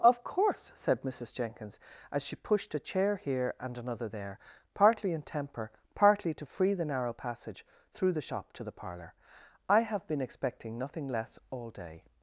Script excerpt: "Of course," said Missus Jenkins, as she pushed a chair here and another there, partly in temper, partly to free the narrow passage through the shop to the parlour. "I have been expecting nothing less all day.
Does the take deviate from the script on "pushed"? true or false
false